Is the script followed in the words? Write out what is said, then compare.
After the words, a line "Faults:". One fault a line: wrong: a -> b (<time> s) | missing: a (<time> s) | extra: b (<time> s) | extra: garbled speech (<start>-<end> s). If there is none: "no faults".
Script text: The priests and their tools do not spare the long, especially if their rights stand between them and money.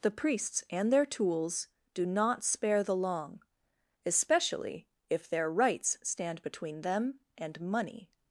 The priests and their tools do not spare the long, especially if their rights stand between them and money.
Faults:
no faults